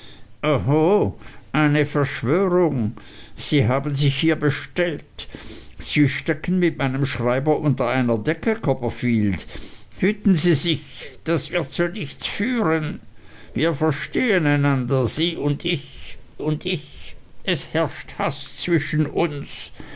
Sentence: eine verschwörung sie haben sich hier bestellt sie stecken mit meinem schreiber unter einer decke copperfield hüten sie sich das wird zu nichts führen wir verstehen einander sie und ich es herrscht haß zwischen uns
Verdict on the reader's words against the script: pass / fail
fail